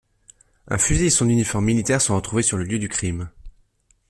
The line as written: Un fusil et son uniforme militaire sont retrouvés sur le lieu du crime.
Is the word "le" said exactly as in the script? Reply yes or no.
yes